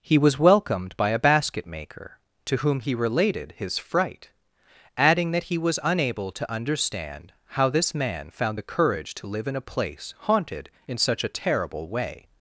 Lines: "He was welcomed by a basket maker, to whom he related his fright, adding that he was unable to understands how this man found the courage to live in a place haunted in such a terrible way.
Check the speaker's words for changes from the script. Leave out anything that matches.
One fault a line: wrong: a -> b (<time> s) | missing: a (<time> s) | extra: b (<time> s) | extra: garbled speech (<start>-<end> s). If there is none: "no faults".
wrong: understands -> understand (6.5 s)